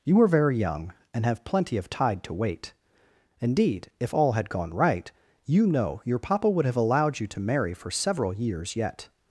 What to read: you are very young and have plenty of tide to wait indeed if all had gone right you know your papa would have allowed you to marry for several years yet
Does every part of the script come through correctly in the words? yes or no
yes